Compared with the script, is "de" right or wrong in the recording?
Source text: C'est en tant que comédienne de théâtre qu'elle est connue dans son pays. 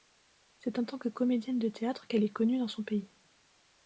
right